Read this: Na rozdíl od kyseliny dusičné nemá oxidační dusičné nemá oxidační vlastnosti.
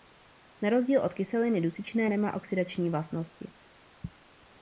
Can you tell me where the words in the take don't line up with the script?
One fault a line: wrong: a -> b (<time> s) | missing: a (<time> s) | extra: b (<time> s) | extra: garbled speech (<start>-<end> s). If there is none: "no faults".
missing: dusičné nemá oxidační (2.9 s)